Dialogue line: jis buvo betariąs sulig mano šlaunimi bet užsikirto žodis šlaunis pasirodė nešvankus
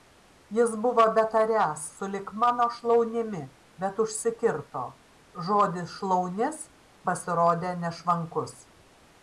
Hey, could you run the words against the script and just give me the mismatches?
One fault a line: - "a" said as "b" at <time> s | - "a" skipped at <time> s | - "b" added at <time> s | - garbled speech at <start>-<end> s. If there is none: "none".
none